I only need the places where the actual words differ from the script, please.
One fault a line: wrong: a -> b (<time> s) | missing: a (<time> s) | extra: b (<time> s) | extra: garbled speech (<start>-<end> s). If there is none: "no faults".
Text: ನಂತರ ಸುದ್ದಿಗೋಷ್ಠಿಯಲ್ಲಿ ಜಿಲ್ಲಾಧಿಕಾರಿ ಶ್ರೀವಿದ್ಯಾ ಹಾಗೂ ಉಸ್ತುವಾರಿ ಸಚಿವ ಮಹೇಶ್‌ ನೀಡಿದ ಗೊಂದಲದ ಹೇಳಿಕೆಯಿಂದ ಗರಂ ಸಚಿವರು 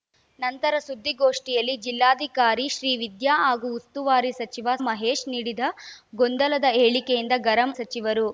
no faults